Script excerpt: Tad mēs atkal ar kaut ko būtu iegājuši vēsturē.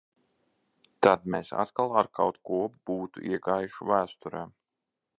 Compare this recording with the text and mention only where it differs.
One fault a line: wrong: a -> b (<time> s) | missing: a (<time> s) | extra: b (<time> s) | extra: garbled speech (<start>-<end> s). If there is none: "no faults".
no faults